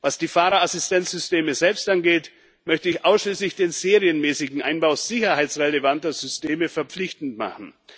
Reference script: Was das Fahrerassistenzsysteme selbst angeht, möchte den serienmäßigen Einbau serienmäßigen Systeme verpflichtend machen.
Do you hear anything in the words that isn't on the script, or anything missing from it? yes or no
yes